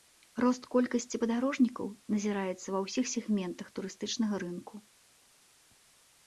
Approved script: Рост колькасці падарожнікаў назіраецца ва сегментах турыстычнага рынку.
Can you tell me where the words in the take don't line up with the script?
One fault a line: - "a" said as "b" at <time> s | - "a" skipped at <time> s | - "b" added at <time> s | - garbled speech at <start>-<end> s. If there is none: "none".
- "ўсіх" added at 2.8 s